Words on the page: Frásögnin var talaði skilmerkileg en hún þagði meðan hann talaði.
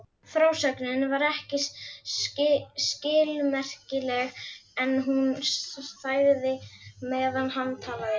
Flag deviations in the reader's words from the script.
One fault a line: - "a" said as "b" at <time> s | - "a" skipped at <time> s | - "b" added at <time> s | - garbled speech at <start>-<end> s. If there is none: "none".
- "talaði" said as "ekki" at 1.3 s